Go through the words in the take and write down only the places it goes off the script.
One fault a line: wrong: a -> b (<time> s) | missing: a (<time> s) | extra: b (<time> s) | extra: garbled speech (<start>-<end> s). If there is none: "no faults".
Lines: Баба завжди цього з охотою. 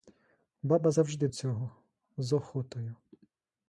no faults